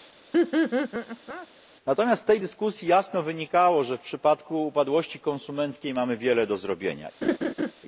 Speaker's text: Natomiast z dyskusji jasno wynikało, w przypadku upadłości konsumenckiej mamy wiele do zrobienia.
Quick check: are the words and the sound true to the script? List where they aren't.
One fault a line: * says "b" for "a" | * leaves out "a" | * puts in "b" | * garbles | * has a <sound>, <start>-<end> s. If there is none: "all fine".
* has a laugh, 0.3-1.5 s
* puts in "tej"
* puts in "że"
* has a laugh, 7.2-7.7 s